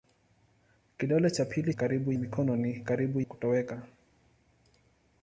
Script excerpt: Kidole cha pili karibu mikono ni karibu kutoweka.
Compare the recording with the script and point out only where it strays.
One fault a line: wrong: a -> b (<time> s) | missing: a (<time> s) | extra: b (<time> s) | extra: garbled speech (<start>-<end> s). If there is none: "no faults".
no faults